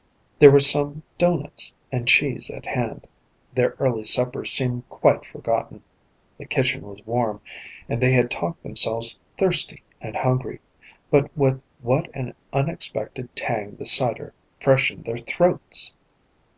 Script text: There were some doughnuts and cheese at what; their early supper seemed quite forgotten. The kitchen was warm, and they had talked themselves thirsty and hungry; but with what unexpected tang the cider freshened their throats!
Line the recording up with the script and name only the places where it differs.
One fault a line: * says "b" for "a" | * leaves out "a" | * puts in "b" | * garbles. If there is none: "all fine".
* says "hand" for "what"
* puts in "an"